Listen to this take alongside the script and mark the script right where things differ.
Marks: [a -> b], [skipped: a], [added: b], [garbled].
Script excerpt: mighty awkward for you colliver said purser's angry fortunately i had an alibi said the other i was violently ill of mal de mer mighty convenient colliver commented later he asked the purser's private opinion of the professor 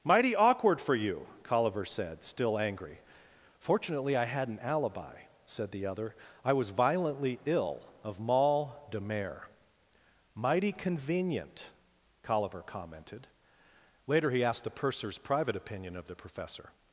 mighty awkward for you colliver said [purser's -> still] angry fortunately i had an alibi said the other i was violently ill of mal de mer mighty convenient colliver commented later he asked the purser's private opinion of the professor